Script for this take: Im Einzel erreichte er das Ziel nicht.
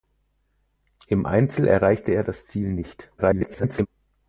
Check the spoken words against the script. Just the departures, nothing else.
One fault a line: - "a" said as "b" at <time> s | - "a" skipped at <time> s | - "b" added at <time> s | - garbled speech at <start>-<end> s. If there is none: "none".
- garbled speech at 3.2-3.9 s